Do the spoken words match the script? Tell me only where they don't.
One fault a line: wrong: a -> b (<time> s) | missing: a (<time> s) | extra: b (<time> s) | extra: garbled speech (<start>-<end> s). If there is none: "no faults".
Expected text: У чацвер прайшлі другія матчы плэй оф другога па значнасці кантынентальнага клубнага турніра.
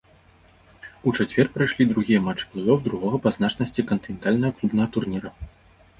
no faults